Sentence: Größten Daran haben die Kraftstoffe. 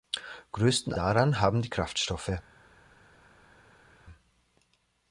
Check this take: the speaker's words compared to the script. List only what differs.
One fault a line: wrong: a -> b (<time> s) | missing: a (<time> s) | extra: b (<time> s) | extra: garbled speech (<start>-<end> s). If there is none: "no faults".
no faults